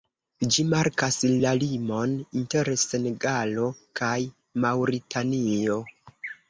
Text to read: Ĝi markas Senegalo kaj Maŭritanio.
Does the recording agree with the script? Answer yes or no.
no